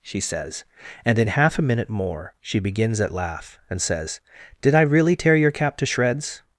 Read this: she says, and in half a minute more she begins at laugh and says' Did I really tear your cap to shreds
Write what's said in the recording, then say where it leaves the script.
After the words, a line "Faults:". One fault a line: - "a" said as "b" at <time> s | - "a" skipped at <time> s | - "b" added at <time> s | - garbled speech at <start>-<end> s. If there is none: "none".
she says, and in half a minute more she begins at laugh and says' Did I really tear your cap to shreds
Faults:
none